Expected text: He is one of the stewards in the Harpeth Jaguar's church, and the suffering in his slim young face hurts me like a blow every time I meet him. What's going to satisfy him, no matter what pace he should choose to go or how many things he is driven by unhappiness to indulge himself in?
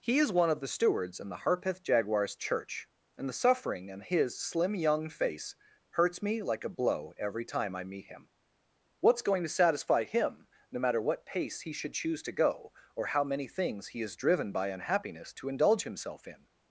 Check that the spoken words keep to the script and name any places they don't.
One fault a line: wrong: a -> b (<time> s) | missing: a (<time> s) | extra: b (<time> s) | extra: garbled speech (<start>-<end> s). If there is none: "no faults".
no faults